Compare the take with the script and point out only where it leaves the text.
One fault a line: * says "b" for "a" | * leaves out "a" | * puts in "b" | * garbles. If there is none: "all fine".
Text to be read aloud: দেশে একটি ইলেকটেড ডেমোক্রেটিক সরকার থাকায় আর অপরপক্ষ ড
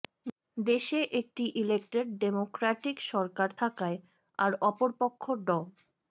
all fine